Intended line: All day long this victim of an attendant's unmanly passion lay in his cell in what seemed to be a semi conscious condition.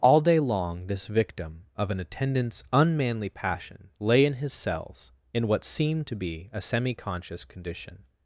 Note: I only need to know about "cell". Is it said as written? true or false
false